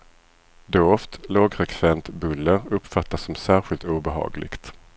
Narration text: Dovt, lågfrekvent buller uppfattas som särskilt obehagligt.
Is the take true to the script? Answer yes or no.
yes